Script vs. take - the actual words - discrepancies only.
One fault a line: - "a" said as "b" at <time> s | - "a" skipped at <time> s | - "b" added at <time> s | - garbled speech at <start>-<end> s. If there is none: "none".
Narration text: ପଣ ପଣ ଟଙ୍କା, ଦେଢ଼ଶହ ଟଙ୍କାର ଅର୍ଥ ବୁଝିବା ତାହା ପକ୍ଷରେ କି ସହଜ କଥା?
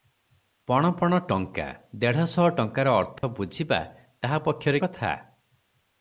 - "କି ସହଜ" skipped at 4.8 s